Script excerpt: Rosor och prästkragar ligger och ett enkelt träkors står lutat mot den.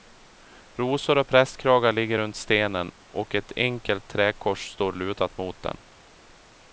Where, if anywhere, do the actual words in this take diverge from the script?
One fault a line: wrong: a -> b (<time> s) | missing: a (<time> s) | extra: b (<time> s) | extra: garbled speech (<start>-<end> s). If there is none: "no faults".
extra: runt stenen (2.2 s)